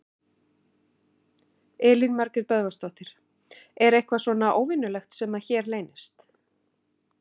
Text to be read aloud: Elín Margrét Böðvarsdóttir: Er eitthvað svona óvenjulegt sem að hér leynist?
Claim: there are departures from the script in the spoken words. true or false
false